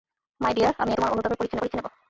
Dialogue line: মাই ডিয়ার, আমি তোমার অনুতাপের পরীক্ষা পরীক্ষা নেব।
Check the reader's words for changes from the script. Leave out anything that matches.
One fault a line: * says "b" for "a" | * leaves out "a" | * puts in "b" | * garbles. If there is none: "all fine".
all fine